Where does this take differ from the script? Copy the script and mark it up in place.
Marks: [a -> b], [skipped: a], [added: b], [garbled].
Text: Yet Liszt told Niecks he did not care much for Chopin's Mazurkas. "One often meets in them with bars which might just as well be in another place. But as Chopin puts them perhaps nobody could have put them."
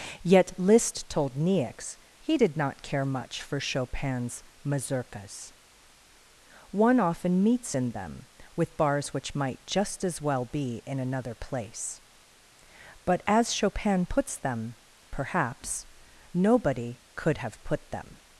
Yet Liszt told Niecks he did not care much for Chopin's Mazurkas. "One often meets in them with bars which might just as well be in another place. But as Chopin puts them perhaps nobody could have put them."